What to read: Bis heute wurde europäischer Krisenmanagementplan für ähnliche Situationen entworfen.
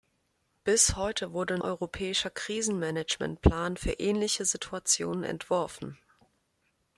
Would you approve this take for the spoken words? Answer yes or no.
yes